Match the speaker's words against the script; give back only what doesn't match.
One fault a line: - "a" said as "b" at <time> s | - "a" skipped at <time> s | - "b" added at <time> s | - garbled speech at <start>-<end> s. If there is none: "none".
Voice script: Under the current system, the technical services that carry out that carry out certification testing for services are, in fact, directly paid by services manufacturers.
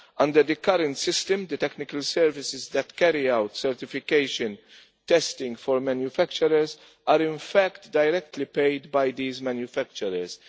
- "that carry out" skipped at 3.6 s
- "services" said as "manufacturers" at 5.8 s
- "services" said as "these" at 9.1 s